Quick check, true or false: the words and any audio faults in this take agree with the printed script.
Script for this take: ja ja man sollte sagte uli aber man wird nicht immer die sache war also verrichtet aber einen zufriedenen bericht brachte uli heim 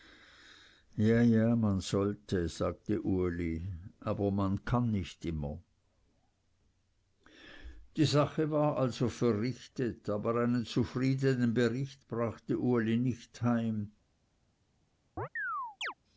false